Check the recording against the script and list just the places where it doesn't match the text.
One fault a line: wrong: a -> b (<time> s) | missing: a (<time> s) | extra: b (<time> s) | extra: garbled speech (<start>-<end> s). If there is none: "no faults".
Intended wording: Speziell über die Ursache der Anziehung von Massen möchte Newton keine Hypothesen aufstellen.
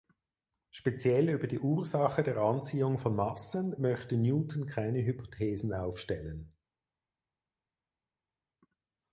no faults